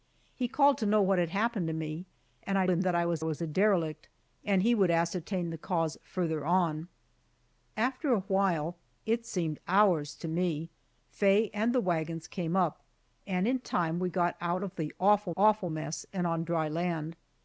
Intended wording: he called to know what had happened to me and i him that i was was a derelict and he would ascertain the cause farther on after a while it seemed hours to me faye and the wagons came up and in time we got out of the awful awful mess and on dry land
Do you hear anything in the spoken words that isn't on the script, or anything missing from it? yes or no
no